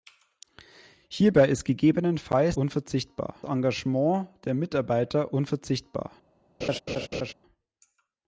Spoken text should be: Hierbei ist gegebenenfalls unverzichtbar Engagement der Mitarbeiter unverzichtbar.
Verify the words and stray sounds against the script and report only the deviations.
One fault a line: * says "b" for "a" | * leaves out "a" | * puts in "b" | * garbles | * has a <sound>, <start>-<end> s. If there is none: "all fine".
* has a laugh, 6.6-7.3 s